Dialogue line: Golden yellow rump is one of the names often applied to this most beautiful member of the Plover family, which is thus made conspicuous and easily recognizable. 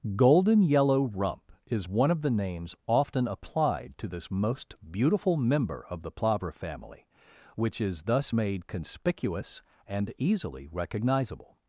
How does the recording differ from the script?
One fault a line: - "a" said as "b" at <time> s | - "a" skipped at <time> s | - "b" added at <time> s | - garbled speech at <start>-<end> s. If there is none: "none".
none